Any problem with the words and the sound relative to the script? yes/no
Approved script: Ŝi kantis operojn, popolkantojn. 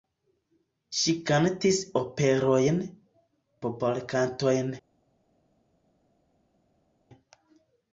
no